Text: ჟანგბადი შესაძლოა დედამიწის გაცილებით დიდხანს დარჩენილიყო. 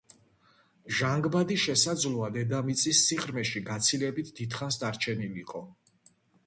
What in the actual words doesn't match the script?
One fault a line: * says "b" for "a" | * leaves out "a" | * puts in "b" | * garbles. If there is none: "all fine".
* puts in "სიღრმეში"